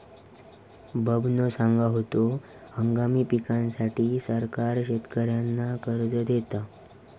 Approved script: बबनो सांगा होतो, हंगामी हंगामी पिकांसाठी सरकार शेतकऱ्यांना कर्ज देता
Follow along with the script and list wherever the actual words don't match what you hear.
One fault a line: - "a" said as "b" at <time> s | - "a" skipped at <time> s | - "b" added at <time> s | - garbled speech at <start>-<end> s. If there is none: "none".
- "हंगामी" skipped at 3.2 s